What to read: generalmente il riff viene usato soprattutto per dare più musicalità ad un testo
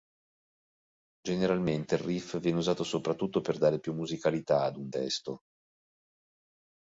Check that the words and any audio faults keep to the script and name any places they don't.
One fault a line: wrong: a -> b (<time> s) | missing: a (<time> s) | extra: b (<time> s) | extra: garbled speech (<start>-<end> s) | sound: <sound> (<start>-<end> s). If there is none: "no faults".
no faults